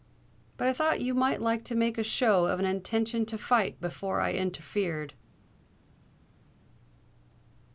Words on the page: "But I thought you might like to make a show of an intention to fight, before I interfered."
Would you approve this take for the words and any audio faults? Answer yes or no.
yes